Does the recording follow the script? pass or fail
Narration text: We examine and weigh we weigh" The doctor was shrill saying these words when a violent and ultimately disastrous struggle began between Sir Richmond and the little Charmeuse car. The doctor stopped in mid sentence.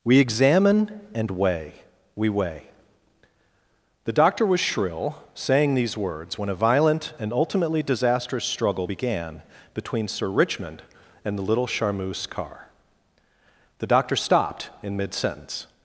pass